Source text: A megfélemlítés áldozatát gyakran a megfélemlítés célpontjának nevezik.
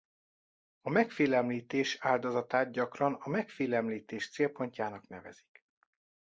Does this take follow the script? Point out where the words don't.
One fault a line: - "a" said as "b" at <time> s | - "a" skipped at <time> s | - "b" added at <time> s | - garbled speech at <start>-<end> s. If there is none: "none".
none